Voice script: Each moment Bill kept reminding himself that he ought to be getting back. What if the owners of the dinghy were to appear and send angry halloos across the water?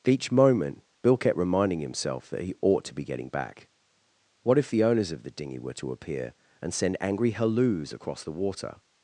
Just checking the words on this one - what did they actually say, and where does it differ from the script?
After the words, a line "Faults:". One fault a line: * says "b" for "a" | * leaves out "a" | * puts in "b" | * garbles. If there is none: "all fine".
Each moment Bill kept reminding himself that he ought to be getting back. What if the owners of the dinghy were to appear and send angry halloos across the water?
Faults:
all fine